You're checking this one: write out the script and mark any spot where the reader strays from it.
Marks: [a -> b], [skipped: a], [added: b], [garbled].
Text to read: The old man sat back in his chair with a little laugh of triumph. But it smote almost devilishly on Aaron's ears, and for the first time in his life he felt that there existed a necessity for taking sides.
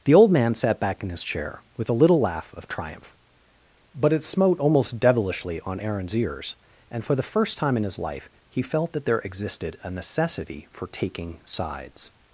The old man sat back in his chair with a little laugh of triumph. But it smote almost devilishly on Aaron's ears, and for the first time in his life he felt that there existed a necessity for taking sides.